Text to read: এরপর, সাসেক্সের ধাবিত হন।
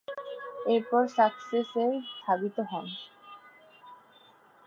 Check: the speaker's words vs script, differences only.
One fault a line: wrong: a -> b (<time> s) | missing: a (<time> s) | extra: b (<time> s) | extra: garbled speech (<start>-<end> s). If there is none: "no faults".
no faults